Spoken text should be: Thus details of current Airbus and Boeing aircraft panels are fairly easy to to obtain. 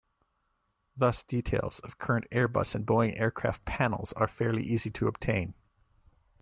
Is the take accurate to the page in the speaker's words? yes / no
no